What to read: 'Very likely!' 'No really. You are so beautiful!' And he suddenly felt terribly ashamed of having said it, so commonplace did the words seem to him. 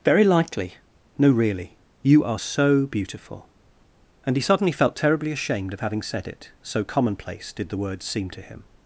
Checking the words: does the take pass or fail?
pass